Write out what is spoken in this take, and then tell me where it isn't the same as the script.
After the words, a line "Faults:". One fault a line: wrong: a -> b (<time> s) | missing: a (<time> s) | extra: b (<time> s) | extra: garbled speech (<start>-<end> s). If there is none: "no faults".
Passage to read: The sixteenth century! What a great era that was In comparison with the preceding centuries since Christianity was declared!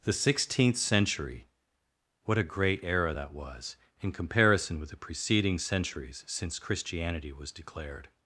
The sixteenth century! What a great era that was In comparison with the preceding centuries since Christianity was declared!
Faults:
no faults